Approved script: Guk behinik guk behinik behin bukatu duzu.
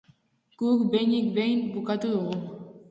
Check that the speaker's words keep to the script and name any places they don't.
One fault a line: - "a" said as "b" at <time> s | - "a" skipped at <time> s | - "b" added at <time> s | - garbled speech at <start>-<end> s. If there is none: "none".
- "guk behinik" skipped at 1.2 s
- "duzu" said as "dugu" at 2.1 s